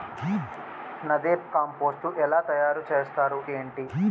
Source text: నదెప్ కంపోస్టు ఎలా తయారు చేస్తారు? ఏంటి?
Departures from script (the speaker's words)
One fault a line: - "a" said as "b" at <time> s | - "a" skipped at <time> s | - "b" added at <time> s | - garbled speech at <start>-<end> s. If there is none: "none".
none